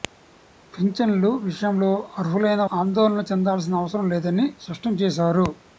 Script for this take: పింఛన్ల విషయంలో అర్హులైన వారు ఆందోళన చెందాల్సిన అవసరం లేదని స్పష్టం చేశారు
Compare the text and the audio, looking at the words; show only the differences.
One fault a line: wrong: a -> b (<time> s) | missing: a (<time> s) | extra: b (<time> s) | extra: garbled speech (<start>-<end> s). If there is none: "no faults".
missing: వారు (2.6 s)